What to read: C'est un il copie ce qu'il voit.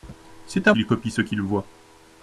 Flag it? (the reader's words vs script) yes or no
no